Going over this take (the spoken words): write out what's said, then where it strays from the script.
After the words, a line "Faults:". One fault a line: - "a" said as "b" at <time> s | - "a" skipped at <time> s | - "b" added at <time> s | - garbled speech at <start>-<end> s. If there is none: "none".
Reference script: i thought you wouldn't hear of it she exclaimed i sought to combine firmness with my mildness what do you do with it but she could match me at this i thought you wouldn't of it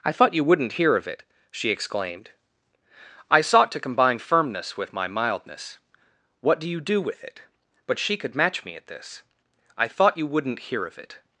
i thought you wouldn't hear of it she exclaimed i sought to combine firmness with my mildness what do you do with it but she could match me at this i thought you wouldn't hear of it
Faults:
- "hear" added at 10.6 s